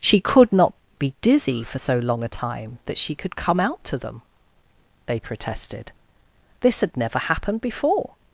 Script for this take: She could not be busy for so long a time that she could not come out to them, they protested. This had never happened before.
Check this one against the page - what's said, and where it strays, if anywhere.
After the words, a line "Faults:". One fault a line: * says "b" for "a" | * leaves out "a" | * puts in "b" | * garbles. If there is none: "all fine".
She could not be dizzy for so long a time that she could come out to them, they protested. This had never happened before.
Faults:
* says "dizzy" for "busy"
* leaves out "not"